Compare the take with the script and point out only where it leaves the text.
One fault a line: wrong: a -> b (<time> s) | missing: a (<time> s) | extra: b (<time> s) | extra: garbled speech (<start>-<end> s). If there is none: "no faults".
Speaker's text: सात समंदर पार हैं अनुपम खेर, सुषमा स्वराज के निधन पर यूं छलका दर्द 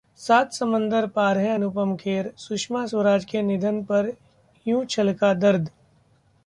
no faults